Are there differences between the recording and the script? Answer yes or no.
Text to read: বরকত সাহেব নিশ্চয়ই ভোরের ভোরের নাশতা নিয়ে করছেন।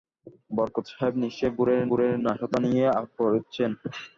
no